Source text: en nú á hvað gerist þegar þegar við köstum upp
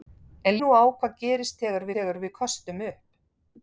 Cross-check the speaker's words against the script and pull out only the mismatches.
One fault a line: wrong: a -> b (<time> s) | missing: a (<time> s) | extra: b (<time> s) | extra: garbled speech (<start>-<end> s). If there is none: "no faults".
no faults